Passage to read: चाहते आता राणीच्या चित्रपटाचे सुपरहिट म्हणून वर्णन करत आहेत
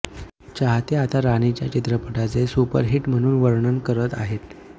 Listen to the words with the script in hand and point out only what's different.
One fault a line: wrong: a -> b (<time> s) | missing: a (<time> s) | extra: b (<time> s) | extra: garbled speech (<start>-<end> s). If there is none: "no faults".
no faults